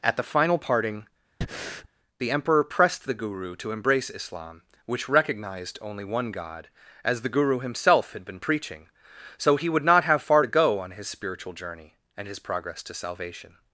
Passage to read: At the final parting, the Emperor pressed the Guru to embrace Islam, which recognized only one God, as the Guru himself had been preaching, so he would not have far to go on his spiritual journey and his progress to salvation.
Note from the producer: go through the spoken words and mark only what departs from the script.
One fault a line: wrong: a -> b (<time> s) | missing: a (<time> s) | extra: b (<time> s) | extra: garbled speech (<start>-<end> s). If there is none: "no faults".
no faults